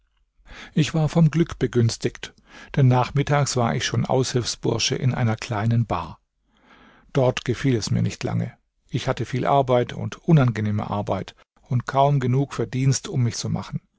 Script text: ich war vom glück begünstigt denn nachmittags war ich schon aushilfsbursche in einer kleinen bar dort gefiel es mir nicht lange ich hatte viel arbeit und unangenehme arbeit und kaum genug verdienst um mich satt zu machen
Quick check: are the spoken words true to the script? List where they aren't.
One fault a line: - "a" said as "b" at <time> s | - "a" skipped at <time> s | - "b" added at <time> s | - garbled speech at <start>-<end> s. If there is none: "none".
- "satt" skipped at 13.4 s